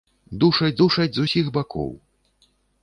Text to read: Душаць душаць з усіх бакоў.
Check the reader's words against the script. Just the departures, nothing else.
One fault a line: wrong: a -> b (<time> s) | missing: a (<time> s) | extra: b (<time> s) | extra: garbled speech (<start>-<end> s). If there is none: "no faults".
no faults